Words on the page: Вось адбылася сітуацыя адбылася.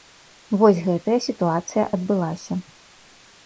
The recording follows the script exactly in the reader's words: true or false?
false